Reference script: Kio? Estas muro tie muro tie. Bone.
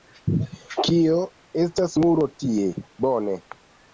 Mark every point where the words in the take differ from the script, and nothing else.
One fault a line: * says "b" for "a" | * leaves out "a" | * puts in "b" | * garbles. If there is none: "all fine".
* leaves out "muro tie"